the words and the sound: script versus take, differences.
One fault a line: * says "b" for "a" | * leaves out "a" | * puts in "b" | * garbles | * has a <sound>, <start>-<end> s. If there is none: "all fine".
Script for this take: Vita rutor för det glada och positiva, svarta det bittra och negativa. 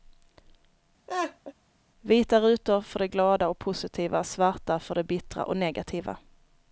* has a laugh, 1.1-1.5 s
* puts in "för"